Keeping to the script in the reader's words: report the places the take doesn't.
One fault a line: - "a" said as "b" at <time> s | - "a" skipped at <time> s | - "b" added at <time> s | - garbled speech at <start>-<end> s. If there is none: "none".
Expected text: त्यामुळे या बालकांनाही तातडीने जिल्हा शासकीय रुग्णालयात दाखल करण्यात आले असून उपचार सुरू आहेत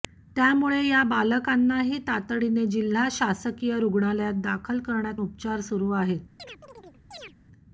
- "आले असून" skipped at 5.2 s